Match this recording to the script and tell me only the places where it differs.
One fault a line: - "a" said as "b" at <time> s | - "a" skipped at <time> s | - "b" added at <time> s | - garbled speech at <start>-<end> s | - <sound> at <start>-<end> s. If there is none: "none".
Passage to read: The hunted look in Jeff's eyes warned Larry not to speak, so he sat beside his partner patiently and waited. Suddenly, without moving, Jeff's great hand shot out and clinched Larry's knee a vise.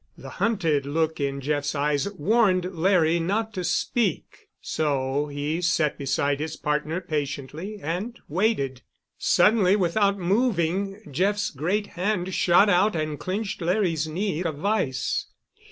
none